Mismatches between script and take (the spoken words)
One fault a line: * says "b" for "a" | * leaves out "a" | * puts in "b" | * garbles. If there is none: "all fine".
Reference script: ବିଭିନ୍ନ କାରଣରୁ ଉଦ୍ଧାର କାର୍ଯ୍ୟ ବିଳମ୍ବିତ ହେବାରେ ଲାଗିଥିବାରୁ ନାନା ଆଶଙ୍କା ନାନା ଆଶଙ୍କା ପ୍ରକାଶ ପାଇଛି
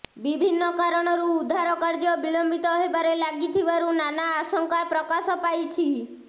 * leaves out "ନାନା ଆଶଙ୍କା"